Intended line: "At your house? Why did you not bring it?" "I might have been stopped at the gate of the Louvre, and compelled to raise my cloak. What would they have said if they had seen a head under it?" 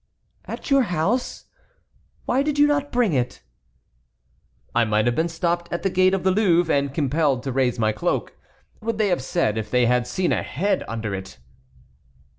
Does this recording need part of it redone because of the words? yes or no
yes